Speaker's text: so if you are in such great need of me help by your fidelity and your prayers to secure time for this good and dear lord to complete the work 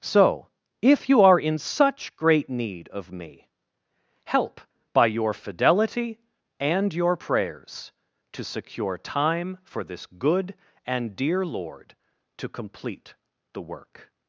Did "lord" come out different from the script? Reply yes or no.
no